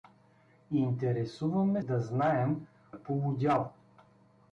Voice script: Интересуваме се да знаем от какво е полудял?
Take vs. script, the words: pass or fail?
fail